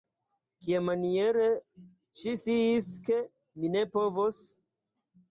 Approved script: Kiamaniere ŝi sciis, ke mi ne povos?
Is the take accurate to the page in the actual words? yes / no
yes